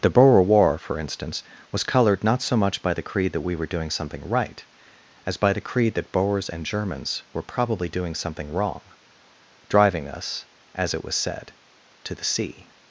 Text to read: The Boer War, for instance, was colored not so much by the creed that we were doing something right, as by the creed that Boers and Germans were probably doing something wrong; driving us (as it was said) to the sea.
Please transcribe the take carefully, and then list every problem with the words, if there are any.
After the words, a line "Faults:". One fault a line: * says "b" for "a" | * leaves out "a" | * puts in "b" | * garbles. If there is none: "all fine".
The Boer War, for instance, was colored not so much by the creed that we were doing something right, as by the creed that Boers and Germans were probably doing something wrong; driving us (as it was said) to the sea.
Faults:
all fine